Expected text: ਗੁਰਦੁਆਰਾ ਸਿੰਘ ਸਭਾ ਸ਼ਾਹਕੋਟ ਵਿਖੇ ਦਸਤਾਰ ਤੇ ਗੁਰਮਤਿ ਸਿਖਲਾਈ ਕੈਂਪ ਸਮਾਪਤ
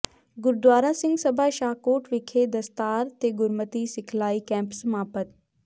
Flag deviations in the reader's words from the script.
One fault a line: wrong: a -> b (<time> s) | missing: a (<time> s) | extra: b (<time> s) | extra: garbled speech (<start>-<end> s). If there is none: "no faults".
no faults